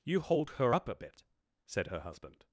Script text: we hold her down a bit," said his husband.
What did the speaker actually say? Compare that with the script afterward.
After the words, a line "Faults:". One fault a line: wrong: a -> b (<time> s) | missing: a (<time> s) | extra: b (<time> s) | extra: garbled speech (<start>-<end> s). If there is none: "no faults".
you hold her up a bit," said her husband.
Faults:
wrong: we -> you (0.0 s)
wrong: down -> up (0.7 s)
wrong: his -> her (1.9 s)